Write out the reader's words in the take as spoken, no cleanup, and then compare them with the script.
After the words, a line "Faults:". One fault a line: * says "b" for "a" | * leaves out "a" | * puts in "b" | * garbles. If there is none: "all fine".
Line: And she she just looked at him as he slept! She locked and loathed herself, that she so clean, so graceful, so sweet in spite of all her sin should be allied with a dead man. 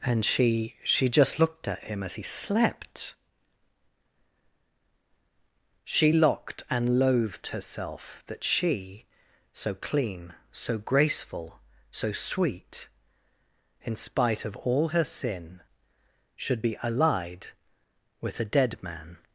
And she she just looked at him as he slept! She locked and loathed herself, that she so clean, so graceful, so sweet in spite of all her sin should be allied with a dead man.
Faults:
all fine